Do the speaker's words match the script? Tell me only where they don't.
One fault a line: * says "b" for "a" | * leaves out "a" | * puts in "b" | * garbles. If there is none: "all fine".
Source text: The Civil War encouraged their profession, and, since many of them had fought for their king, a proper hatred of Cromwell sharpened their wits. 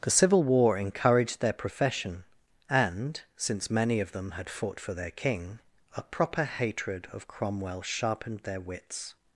all fine